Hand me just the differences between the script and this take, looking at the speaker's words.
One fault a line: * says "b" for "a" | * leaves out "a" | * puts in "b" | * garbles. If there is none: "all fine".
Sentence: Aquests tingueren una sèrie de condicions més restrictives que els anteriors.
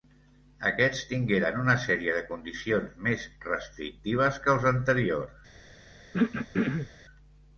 all fine